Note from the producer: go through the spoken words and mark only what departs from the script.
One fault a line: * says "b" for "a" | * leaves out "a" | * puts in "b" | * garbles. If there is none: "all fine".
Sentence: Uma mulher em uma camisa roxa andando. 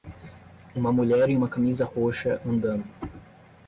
all fine